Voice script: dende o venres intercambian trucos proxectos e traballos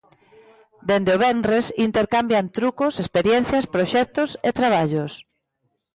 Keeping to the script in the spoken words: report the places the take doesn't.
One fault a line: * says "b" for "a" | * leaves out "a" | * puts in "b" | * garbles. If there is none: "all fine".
* puts in "experiencias"